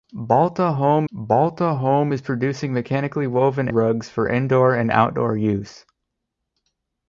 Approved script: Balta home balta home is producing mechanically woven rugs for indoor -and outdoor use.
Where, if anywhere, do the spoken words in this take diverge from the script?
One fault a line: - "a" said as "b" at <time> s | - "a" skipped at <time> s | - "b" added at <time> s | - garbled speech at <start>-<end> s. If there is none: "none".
none